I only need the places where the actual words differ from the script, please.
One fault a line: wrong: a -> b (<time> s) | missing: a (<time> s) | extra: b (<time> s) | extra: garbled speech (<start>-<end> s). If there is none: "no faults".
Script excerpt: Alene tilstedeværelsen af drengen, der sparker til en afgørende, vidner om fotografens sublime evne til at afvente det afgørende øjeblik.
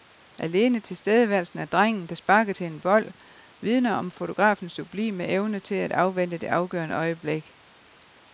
wrong: afgørende -> bold (2.8 s)